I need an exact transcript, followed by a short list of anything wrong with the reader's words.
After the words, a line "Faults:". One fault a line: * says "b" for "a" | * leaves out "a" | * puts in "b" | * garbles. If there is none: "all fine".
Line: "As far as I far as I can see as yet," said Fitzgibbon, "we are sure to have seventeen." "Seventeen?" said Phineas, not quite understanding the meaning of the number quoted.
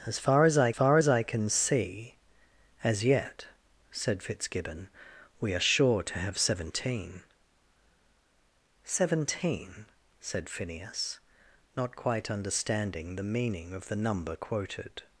"As far as I far as I can see as yet," said Fitzgibbon, "we are sure to have seventeen." "Seventeen?" said Phineas, not quite understanding the meaning of the number quoted.
Faults:
all fine